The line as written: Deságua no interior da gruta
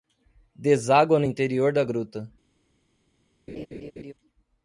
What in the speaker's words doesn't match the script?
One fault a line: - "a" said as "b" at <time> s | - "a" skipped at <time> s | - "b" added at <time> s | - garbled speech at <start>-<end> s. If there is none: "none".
none